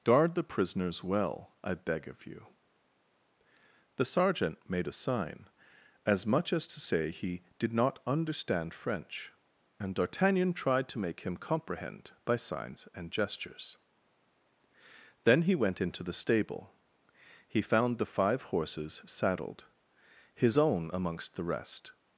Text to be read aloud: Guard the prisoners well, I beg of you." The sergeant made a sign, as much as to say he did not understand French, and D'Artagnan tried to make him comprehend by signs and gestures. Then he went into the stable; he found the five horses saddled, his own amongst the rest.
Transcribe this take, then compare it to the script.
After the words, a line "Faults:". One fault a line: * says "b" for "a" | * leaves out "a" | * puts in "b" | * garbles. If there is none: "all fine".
Guard the prisoners well, I beg of you." The sergeant made a sign, as much as to say he did not understand French, and D'Artagnan tried to make him comprehend by signs and gestures. Then he went into the stable; he found the five horses saddled, his own amongst the rest.
Faults:
all fine